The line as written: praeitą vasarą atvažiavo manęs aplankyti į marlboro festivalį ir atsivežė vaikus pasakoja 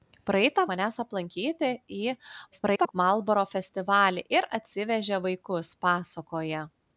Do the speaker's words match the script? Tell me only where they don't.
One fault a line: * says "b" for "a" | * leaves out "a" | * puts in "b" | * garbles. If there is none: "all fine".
* leaves out "vasarą atvažiavo"
* garbles